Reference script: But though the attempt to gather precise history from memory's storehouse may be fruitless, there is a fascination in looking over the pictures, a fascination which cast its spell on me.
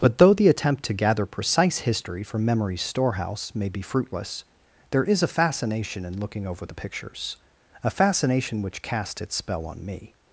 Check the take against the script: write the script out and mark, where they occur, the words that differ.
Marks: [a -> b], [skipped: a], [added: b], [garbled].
But though the attempt to gather precise history from memory's storehouse may be fruitless, there is a fascination in looking over the pictures, a fascination which cast its spell on me.